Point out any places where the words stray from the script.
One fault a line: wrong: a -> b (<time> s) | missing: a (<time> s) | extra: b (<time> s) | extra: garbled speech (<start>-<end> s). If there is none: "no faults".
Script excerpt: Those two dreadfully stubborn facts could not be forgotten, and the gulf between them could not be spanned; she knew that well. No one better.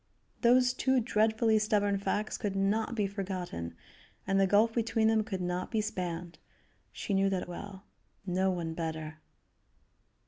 no faults